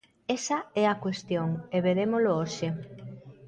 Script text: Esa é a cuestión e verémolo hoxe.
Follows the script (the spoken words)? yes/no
yes